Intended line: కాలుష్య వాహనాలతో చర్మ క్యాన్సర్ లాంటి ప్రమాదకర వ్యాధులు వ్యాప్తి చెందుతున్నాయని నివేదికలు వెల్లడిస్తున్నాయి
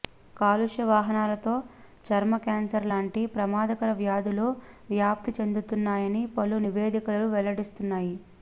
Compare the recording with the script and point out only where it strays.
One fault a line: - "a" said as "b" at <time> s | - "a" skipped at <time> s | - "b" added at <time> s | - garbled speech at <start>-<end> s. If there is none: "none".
- "పలు" added at 6.4 s